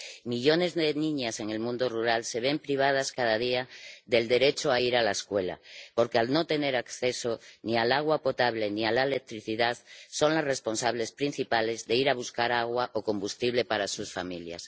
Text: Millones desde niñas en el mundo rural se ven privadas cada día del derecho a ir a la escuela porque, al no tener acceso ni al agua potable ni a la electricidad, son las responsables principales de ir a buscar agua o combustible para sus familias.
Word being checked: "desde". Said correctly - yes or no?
no